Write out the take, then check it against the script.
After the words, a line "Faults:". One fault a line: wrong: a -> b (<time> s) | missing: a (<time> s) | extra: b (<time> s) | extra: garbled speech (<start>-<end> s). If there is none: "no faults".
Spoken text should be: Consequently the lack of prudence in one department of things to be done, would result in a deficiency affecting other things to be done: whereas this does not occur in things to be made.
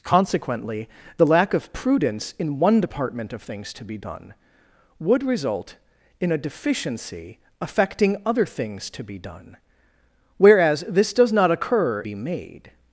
Consequently the lack of prudence in one department of things to be done, would result in a deficiency affecting other things to be done: whereas this does not occur be made.
Faults:
missing: in things to (12.0 s)